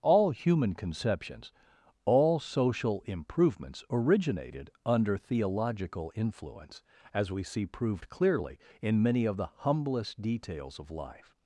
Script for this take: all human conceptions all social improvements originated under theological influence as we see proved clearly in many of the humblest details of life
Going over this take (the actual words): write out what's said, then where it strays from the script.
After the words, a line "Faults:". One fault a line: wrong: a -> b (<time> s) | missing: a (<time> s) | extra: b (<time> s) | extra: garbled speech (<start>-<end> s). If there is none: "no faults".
all human conceptions all social improvements originated under theological influence as we see proved clearly in many of the humblest details of life
Faults:
no faults